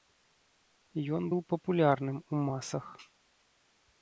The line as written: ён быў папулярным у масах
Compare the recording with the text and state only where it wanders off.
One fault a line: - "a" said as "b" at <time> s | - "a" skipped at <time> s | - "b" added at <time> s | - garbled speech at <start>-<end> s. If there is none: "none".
none